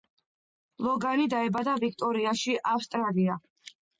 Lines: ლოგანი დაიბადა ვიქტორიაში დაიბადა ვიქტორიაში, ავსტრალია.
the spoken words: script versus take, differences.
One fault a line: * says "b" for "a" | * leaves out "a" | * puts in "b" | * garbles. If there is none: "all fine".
* leaves out "დაიბადა ვიქტორიაში"